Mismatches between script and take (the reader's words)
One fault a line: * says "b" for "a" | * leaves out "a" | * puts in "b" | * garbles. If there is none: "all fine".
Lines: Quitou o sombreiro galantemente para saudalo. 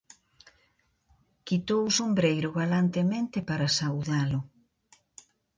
all fine